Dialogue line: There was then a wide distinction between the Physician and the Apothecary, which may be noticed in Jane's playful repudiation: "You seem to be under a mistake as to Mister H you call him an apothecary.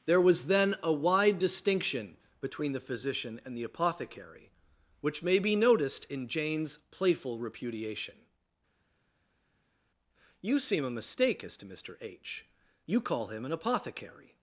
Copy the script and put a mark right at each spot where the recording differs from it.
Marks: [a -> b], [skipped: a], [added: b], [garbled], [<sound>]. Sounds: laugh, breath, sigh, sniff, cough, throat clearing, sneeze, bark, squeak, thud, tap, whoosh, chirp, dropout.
There was then a wide distinction between the Physician and the Apothecary, which may be noticed in Jane's playful repudiation: "You seem [skipped: to be under] a mistake as to Mister H you call him an apothecary.